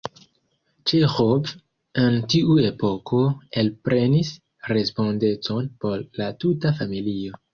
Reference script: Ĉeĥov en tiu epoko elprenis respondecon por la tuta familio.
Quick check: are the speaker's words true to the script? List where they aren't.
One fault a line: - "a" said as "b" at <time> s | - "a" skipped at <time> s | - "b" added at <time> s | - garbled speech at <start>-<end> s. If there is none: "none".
none